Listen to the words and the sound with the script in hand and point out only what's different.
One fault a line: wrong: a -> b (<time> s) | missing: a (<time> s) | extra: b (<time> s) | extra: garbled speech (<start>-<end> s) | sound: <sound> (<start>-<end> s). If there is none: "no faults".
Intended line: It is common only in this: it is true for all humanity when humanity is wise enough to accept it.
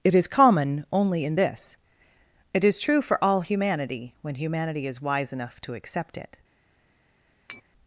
sound: tap (7.5-7.6 s)